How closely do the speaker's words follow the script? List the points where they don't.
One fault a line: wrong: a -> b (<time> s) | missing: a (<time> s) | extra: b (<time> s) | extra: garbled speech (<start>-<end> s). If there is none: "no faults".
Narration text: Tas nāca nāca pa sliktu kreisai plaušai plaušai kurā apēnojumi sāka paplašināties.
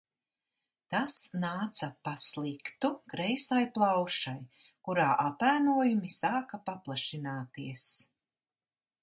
missing: nāca (1.9 s)
missing: plaušai (4.4 s)